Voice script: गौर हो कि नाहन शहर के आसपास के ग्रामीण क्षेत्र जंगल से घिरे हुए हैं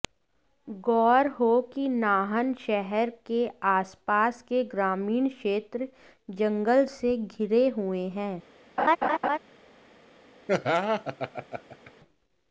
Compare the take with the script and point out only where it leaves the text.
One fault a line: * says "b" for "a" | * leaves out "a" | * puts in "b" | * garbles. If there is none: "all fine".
all fine